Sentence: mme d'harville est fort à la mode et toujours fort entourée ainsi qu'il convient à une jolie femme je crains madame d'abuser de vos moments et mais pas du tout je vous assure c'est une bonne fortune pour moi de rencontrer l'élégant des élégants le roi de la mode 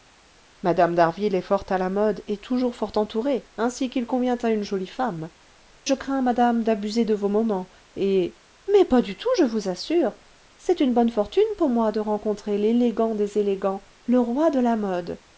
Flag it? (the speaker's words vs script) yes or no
no